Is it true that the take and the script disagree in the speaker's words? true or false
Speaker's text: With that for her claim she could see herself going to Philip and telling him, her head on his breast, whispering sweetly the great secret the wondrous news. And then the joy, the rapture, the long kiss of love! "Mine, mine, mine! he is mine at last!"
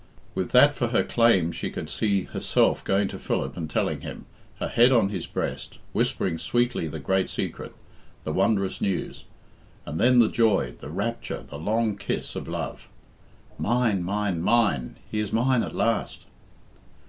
false